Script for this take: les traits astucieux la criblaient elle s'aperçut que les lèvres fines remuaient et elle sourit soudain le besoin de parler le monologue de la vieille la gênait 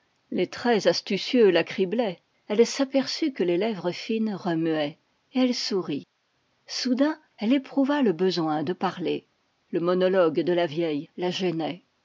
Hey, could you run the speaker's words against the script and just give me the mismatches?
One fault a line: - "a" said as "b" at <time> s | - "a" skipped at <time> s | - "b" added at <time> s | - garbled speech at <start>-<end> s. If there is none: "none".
- "elle éprouva" added at 7.4 s